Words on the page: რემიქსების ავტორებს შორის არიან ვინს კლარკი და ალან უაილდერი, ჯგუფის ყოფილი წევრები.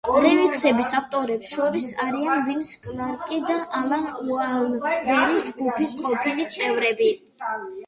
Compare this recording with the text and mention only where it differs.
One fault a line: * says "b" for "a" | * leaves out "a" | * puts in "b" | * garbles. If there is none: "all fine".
all fine